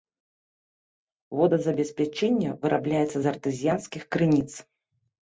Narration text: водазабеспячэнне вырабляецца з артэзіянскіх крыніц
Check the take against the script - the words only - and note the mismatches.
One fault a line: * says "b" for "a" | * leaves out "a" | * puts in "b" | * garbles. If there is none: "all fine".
all fine